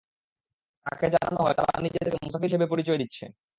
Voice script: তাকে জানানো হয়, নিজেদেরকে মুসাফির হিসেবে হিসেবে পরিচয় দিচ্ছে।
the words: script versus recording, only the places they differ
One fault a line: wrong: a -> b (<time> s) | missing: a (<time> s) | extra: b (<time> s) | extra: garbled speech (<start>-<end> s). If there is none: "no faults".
extra: তারা (1.6 s)
missing: হিসেবে (2.7 s)